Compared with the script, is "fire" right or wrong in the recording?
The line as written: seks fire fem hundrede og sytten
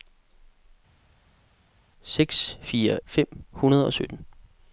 right